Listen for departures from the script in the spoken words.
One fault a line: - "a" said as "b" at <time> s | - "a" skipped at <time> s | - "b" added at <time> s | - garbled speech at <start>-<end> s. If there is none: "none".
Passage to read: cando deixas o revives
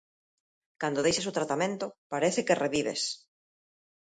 - "tratamento parece que" added at 1.4 s